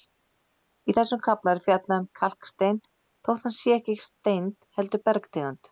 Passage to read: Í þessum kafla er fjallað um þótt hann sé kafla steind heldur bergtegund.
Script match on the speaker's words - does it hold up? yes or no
no